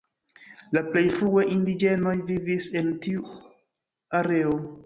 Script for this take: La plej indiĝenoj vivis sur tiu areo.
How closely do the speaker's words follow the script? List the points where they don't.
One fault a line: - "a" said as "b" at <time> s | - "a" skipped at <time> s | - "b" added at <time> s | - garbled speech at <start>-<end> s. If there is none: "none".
- "frue" added at 1.2 s
- "sur" said as "en" at 2.8 s